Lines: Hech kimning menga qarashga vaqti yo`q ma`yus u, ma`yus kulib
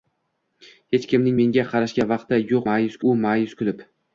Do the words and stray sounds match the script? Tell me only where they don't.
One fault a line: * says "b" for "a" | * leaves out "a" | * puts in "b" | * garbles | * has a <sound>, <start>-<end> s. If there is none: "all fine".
all fine